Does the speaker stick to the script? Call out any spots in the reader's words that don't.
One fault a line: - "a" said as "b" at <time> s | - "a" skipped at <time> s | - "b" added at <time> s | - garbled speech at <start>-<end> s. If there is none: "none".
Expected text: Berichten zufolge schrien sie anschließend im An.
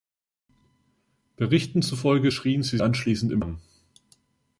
none